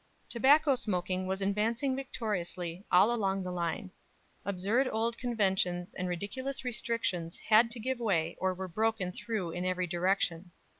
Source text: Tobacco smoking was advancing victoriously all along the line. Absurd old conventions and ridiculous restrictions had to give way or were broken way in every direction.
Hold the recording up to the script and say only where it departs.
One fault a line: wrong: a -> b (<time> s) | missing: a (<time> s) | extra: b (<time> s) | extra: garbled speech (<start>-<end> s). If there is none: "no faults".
wrong: way -> through (9.1 s)